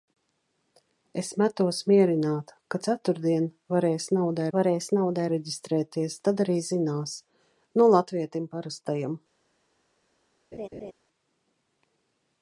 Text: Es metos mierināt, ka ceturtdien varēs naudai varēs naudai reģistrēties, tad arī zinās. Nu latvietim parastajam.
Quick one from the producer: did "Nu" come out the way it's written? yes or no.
yes